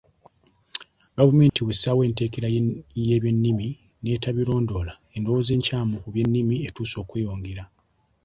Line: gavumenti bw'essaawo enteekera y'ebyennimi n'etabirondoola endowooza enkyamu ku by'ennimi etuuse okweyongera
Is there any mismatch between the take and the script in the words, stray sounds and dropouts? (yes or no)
yes